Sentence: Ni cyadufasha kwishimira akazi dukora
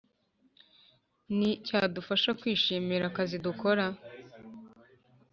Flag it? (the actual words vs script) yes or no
no